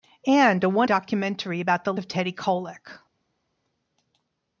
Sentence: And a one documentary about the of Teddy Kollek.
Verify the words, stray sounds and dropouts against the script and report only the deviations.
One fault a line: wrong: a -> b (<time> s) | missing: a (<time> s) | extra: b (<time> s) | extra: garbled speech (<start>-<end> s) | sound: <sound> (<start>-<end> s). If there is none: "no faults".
no faults